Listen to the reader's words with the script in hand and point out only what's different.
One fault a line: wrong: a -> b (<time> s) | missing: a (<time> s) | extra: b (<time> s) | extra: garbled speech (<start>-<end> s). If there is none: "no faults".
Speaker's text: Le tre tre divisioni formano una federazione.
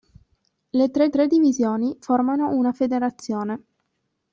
no faults